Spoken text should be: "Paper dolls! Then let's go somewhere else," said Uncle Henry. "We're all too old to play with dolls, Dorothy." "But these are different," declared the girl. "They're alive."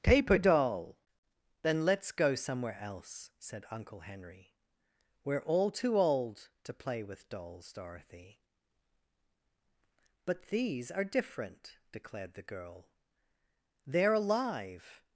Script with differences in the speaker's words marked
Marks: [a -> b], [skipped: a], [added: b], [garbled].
"Paper [dolls! -> doll] Then let's go somewhere else," said Uncle Henry. "We're all too old to play with dolls, Dorothy." "But these are different," declared the girl. "They're alive."